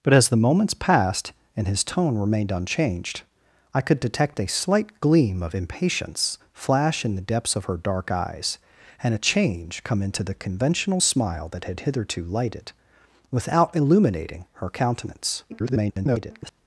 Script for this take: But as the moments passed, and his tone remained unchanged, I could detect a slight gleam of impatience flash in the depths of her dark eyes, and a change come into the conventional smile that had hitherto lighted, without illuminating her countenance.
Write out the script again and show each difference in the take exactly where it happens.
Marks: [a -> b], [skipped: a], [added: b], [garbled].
But as the moments passed, and his tone remained unchanged, I could detect a slight gleam of impatience flash in the depths of her dark eyes, and a change come into the conventional smile that had hitherto lighted, without illuminating her countenance. [garbled]